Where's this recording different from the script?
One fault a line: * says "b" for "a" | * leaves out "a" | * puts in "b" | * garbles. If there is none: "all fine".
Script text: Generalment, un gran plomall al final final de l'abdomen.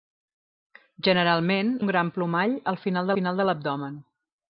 all fine